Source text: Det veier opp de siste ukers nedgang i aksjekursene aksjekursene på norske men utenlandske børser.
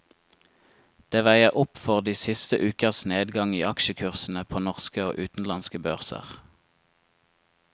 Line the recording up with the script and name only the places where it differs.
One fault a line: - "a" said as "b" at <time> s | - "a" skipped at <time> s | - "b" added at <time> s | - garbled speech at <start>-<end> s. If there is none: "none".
- "for" added at 1.8 s
- "aksjekursene" skipped at 4.4 s
- "men" said as "og" at 5.1 s